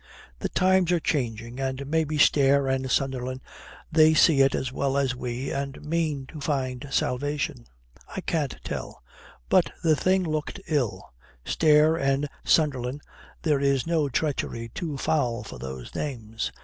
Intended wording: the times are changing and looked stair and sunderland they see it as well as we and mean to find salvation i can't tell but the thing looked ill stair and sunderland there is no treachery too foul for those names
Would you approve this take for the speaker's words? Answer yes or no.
no